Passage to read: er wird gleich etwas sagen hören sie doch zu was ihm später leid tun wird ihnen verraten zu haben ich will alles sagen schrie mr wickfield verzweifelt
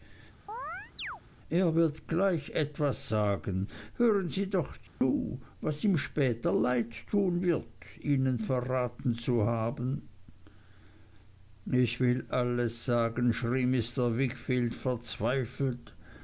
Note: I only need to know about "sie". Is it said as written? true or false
true